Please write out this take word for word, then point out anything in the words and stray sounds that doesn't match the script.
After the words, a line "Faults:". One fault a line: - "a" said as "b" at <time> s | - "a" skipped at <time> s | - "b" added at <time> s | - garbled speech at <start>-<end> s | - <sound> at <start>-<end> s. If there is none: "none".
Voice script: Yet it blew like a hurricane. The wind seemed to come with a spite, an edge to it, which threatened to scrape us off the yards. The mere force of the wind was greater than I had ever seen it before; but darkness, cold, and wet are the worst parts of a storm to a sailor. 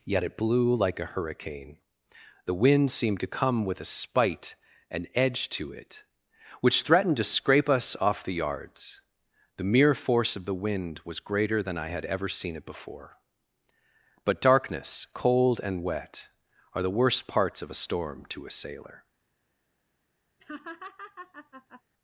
Yet it blew like a hurricane. The wind seemed to come with a spite, an edge to it, which threatened to scrape us off the yards. The mere force of the wind was greater than I had ever seen it before; but darkness, cold, and wet are the worst parts of a storm to a sailor.
Faults:
- laugh at 20.4-21.8 s